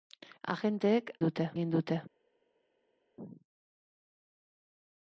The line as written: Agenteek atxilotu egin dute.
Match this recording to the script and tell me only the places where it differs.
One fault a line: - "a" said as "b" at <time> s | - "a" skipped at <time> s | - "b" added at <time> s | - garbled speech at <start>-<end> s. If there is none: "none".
- "atxilotu" said as "dute" at 1.2 s